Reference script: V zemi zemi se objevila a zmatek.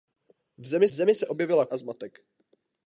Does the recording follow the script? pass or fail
pass